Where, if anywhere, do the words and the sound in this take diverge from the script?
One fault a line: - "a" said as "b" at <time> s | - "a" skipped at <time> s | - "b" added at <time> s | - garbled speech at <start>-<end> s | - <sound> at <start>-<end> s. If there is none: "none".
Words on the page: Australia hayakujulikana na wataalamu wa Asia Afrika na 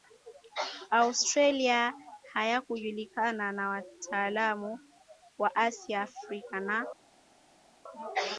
none